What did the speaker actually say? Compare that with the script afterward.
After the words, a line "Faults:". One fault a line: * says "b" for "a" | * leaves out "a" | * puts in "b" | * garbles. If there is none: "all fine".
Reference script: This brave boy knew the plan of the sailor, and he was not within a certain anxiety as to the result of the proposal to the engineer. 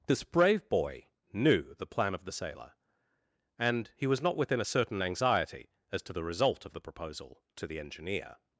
This brave boy knew the plan of the sailor, and he was not within a certain anxiety as to the result of the proposal to the engineer.
Faults:
all fine